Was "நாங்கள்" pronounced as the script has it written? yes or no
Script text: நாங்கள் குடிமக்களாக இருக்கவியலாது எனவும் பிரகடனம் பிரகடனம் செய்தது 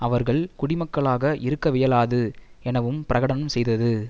no